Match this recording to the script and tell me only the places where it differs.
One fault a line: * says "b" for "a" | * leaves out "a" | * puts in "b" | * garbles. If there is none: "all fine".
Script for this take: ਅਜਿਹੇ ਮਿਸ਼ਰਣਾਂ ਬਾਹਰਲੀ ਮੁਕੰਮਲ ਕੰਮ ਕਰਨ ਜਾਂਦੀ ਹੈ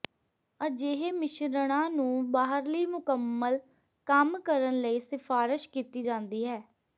* puts in "ਨੂੰ"
* puts in "ਲਈ ਸਿਫਾਰਸ਼ ਕੀਤੀ"